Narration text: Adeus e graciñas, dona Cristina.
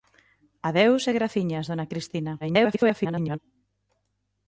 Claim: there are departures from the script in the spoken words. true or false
true